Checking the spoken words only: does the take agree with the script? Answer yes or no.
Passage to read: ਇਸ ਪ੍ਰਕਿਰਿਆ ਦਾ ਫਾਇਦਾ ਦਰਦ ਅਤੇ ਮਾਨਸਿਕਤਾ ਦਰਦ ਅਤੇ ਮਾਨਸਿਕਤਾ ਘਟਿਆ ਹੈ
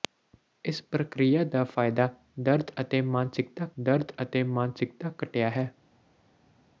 yes